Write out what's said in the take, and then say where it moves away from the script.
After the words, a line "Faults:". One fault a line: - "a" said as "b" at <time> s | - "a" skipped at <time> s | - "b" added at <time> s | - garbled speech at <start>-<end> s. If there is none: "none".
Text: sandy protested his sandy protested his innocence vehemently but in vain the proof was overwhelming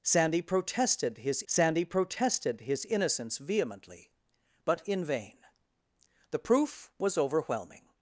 sandy protested his sandy protested his innocence vehemently but in vain the proof was overwhelming
Faults:
none